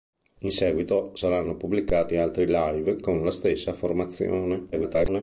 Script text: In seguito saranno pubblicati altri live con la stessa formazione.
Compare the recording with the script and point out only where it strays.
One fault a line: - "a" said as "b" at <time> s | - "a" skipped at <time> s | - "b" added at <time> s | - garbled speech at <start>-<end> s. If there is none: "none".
- garbled speech at 4.7-5.2 s